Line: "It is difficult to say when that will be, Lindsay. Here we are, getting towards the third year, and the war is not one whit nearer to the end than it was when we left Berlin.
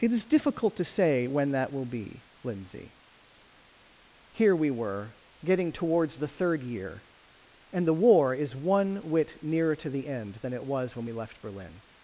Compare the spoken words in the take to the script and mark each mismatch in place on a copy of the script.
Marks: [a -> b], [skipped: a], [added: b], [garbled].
"It is difficult to say when that will be, Lindsay. Here we [are, -> were] getting towards the third year, and the war is [skipped: not] one whit nearer to the end than it was when we left Berlin.